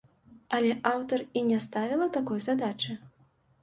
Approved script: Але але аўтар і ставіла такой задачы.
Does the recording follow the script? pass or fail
fail